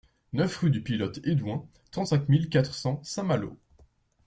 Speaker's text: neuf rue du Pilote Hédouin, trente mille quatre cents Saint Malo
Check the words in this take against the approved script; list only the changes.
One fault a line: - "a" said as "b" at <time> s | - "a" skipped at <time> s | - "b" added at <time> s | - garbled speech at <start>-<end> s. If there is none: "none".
- "cinq" added at 2.1 s